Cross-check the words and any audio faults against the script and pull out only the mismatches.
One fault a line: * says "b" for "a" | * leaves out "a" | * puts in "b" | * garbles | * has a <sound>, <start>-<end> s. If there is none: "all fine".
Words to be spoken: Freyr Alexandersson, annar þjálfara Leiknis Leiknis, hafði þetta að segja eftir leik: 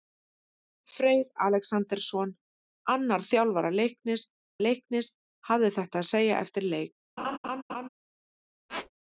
* has a laugh, 7.2-7.9 s
* has a squeak, 8.7-8.9 s